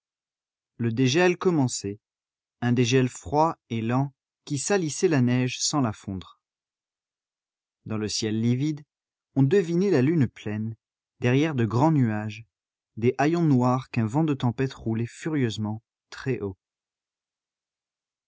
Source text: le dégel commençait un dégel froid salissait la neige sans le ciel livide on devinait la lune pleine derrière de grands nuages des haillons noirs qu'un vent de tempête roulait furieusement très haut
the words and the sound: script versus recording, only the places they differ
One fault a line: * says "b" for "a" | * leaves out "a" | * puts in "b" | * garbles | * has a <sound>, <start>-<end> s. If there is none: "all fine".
* puts in "et lent qui"
* puts in "la fondre dans"